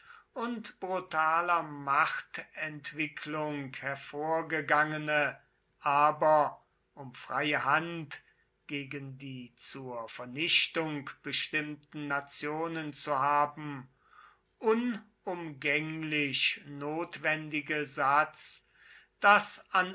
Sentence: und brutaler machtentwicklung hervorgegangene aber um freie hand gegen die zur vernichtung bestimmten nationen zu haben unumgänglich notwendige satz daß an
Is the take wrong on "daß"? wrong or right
right